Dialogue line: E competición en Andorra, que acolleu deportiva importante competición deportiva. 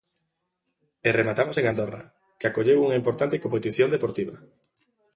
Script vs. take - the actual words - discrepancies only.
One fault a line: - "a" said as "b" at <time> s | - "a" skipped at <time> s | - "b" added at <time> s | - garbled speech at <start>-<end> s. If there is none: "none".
- "competición" said as "rematamos" at 1.2 s
- "deportiva" said as "unha" at 2.8 s